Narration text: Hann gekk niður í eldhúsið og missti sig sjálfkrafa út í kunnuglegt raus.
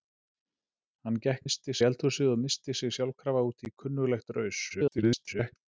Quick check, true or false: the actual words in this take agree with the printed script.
false